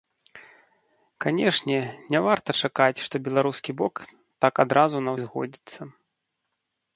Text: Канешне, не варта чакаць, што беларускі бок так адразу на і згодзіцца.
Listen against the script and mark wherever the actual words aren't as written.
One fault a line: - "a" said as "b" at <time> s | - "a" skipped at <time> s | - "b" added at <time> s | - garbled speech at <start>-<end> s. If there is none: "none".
none